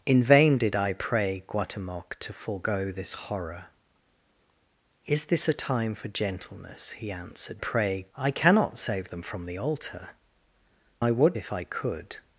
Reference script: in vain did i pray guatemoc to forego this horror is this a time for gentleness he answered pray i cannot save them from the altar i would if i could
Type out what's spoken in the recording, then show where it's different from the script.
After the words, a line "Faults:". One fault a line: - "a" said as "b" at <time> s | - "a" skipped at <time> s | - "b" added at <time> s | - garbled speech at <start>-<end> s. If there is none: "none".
in vain did i pray guatemoc to forego this horror is this a time for gentleness he answered pray i cannot save them from the altar i would if i could
Faults:
none